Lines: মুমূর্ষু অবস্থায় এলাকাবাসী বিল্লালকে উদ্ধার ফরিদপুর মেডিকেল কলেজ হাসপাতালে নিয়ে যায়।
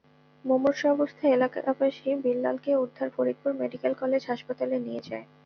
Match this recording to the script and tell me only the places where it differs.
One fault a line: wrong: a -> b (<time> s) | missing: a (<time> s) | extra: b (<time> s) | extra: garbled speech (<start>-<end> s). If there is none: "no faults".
no faults